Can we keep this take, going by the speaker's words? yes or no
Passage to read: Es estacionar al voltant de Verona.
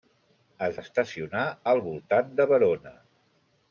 yes